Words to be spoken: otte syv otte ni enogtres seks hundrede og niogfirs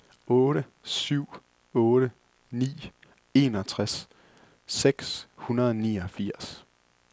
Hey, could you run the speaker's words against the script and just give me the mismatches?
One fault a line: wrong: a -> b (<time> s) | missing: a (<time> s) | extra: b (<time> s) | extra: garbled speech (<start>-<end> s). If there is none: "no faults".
no faults